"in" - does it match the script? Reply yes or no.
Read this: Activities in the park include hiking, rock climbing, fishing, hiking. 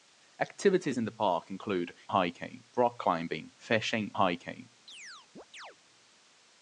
yes